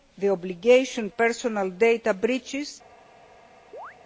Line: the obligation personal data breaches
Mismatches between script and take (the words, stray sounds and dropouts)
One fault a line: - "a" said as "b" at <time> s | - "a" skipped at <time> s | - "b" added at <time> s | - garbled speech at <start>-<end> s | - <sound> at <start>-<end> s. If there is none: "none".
- chirp at 3.7-4.0 s